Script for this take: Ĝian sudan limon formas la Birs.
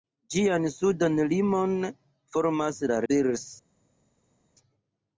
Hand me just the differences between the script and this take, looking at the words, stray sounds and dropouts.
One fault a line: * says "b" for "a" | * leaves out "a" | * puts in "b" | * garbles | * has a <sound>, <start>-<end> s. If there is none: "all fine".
all fine